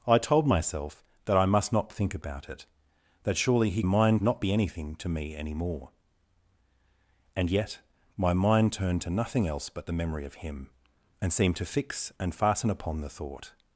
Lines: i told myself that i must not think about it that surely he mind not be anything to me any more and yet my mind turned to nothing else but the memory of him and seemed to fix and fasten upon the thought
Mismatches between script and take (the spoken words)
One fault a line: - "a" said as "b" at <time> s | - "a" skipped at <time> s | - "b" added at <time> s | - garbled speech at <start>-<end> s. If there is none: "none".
none